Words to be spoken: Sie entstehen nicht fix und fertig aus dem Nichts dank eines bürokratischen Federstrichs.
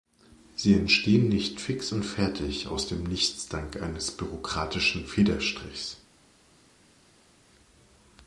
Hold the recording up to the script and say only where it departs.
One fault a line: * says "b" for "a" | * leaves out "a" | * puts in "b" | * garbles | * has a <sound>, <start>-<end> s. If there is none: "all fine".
all fine